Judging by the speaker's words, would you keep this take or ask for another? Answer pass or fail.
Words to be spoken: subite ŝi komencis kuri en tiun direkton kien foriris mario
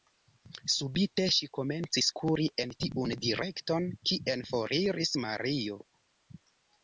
pass